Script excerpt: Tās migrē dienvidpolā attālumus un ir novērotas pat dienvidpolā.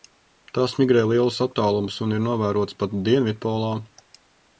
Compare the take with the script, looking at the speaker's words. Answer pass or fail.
fail